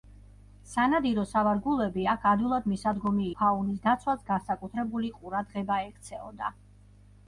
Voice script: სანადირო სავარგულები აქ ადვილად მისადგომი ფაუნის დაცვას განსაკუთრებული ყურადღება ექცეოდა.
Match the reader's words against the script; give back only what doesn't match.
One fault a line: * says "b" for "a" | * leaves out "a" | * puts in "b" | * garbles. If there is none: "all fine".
all fine